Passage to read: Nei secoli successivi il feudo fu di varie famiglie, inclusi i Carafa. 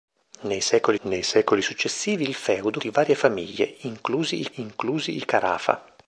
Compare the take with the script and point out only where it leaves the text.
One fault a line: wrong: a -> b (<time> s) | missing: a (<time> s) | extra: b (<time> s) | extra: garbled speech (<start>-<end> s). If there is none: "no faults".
extra: nei secoli (1.1 s)
missing: fu (2.8 s)
extra: inclusi i (4.5 s)